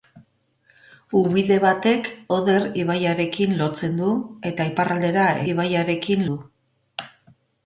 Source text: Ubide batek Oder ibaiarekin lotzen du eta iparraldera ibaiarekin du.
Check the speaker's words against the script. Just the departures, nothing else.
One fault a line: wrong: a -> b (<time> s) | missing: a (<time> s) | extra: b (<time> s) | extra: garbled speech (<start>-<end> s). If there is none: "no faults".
no faults